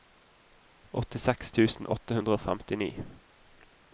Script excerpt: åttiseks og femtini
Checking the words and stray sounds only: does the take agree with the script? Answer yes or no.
no